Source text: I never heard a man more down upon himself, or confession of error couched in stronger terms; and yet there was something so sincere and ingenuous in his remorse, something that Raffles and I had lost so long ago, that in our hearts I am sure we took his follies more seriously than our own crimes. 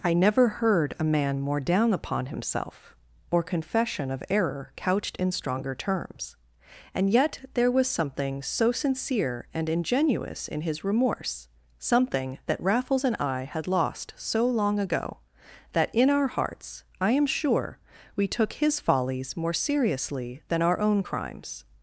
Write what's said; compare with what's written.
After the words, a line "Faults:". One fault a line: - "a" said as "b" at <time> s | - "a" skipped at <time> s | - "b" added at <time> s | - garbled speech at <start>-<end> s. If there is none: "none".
I never heard a man more down upon himself, or confession of error couched in stronger terms; and yet there was something so sincere and ingenuous in his remorse, something that Raffles and I had lost so long ago, that in our hearts I am sure we took his follies more seriously than our own crimes.
Faults:
none